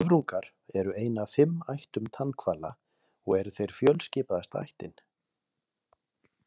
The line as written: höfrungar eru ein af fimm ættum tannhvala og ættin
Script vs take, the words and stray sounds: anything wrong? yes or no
yes